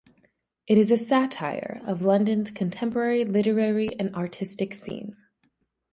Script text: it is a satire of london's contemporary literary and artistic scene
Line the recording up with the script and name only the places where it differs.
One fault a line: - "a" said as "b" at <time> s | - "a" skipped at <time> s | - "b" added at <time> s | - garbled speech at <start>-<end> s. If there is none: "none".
none